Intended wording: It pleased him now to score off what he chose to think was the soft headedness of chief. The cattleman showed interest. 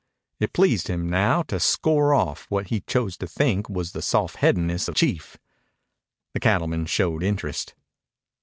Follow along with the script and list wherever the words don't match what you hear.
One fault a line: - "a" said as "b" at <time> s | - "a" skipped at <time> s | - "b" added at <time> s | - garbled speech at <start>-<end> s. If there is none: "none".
none